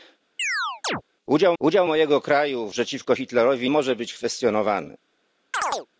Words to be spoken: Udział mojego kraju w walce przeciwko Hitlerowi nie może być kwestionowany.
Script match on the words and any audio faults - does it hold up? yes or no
no